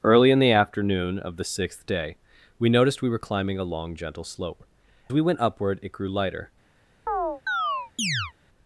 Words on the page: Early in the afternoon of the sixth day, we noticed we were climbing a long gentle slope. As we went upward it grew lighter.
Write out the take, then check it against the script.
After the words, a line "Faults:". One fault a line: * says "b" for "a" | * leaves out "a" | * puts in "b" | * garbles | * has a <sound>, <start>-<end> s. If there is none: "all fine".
Early in the afternoon of the sixth day, we noticed we were climbing a long gentle slope. We went upward it grew lighter.
Faults:
* leaves out "As"
* has a chirp, 7.1-8.3 s